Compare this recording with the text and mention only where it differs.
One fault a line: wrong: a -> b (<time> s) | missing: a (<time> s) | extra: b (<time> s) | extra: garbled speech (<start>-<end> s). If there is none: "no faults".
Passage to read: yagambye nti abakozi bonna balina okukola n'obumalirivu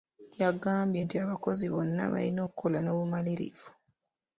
no faults